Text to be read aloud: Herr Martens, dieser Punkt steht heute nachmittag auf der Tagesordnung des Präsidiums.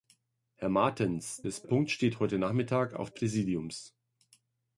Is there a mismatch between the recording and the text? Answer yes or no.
yes